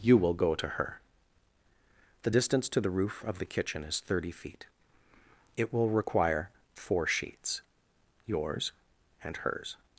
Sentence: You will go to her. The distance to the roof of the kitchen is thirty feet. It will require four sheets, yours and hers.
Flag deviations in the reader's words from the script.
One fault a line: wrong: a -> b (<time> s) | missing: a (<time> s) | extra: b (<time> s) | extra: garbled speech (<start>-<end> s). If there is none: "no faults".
no faults